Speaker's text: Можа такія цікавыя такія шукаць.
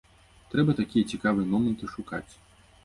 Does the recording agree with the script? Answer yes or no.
no